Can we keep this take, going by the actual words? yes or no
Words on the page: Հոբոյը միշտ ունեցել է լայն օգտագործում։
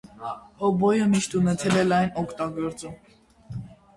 yes